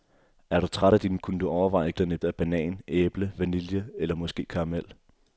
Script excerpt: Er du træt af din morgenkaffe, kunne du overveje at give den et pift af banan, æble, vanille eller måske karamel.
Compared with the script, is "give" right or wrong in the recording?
wrong